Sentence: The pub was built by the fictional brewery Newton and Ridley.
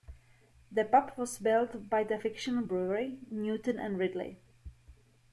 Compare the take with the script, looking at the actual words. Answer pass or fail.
pass